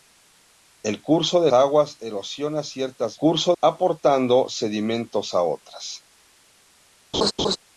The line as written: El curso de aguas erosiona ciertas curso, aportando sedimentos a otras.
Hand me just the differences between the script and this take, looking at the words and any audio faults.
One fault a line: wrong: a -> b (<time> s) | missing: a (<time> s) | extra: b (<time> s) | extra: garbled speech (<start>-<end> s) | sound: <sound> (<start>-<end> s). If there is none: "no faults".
sound: laugh (7.1-7.6 s)